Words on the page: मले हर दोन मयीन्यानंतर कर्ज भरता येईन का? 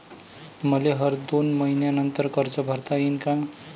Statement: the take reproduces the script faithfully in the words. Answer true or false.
true